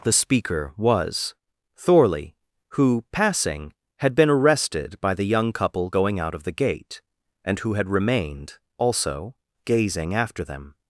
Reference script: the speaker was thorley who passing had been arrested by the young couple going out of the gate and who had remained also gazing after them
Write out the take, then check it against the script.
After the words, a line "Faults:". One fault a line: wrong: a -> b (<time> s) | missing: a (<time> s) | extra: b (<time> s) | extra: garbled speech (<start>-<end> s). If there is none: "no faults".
the speaker was thorley who passing had been arrested by the young couple going out of the gate and who had remained also gazing after them
Faults:
no faults